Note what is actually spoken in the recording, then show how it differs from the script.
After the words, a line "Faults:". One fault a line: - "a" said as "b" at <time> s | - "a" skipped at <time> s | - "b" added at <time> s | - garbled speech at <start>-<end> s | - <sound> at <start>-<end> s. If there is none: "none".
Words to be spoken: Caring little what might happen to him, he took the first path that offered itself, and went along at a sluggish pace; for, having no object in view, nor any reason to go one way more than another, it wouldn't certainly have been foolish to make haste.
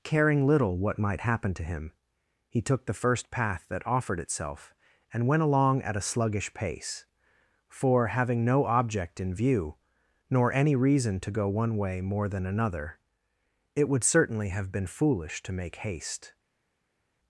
Caring little what might happen to him, he took the first path that offered itself, and went along at a sluggish pace; for, having no object in view, nor any reason to go one way more than another, it would certainly have been foolish to make haste.
Faults:
- "wouldn't" said as "would" at 13.9 s